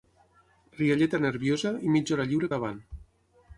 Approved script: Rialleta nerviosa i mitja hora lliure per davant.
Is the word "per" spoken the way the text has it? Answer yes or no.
no